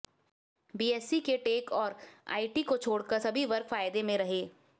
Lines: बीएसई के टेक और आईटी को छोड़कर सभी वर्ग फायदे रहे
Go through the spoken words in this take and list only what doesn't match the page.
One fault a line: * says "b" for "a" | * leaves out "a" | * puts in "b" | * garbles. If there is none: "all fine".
* puts in "में"